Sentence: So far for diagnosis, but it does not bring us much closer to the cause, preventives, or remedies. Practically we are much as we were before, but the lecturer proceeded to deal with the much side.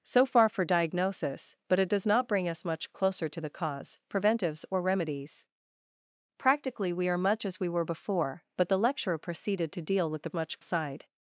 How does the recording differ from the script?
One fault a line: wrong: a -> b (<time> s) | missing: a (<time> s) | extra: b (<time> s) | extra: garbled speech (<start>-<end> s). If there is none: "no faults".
no faults